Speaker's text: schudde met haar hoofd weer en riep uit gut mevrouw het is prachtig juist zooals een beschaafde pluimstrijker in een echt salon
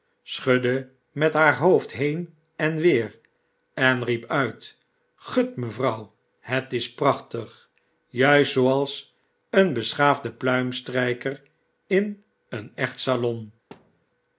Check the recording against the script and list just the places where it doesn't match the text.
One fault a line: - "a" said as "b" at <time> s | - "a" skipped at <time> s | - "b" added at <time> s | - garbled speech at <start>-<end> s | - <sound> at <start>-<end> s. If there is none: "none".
- "heen en" added at 1.9 s
- thud at 13.7-14.1 s